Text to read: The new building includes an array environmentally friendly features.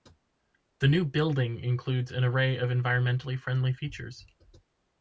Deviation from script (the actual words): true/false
true